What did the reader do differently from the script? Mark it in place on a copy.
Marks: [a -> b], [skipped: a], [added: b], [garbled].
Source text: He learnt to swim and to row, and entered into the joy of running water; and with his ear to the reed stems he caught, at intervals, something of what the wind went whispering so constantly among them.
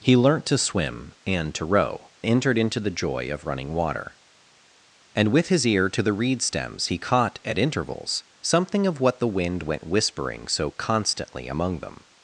He learnt to swim and to row, [skipped: and] entered into the joy of running water; and with his ear to the reed stems he caught, at intervals, something of what the wind went whispering so constantly among them.